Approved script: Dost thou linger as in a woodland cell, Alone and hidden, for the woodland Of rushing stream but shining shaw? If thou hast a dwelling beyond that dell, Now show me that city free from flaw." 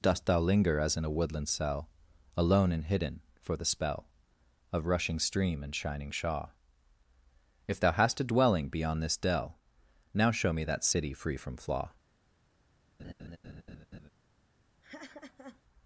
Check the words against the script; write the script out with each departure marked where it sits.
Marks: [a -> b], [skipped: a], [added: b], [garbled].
Dost thou linger as in a woodland cell, Alone and hidden, for the [woodland -> spell] Of rushing stream [but -> and] shining shaw? If thou hast a dwelling beyond [that -> this] dell, Now show me that city free from flaw."